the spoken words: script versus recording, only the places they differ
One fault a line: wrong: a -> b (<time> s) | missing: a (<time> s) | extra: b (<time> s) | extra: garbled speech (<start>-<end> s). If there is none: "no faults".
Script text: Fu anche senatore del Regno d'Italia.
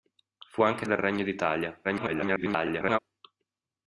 missing: senatore (0.9 s)
extra: garbled speech (1.8-3.0 s)